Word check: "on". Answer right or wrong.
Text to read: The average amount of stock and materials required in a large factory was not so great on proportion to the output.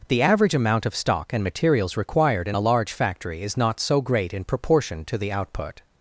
wrong